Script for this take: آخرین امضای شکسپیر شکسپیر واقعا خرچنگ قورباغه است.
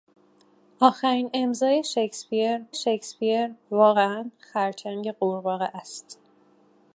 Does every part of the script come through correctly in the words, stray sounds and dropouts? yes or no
yes